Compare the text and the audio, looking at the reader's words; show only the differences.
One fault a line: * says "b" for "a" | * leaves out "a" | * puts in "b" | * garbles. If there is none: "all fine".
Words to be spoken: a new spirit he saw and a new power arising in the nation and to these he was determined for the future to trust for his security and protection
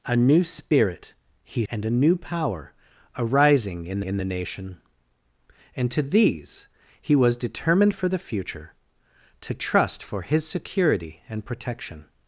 * leaves out "saw"
* puts in "in"